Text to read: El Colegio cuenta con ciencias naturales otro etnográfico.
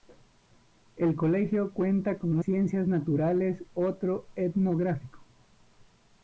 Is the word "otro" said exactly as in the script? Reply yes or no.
yes